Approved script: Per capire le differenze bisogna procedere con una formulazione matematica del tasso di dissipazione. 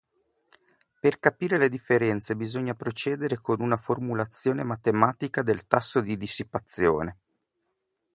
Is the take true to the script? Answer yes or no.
yes